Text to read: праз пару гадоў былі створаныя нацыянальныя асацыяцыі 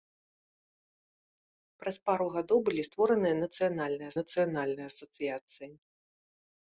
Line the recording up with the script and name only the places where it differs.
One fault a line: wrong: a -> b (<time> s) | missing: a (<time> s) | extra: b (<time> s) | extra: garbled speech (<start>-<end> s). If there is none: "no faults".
extra: нацыянальныя (4.2 s)